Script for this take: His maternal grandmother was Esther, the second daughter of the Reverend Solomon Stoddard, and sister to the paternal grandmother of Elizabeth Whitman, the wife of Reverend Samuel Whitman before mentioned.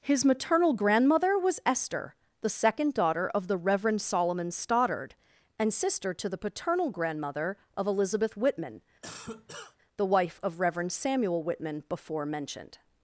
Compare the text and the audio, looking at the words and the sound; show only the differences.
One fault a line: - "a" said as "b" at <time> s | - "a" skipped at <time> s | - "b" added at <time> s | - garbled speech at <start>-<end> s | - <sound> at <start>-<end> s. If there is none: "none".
- cough at 9.0-9.8 s